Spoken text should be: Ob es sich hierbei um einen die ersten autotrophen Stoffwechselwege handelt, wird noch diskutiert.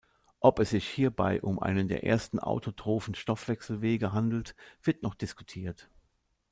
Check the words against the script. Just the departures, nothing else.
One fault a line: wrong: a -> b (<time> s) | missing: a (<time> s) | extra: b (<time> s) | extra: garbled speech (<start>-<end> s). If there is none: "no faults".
wrong: die -> der (1.9 s)